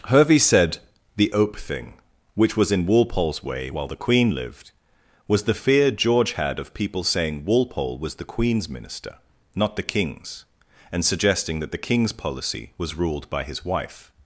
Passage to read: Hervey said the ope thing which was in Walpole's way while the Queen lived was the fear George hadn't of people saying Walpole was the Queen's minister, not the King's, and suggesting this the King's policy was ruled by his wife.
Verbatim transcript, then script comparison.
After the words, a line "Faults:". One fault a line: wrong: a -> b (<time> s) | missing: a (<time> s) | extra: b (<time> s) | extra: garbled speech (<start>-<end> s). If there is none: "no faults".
Hervey said the ope thing which was in Walpole's way while the Queen lived was the fear George had of people saying Walpole was the Queen's minister, not the King's, and suggesting that the King's policy was ruled by his wife.
Faults:
wrong: hadn't -> had (6.3 s)
wrong: this -> that (11.6 s)